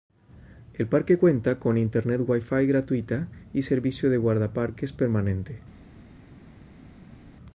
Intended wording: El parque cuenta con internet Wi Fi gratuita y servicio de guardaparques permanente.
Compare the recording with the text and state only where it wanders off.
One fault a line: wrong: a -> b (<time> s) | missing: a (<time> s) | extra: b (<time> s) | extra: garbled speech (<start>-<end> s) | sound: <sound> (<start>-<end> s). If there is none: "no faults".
no faults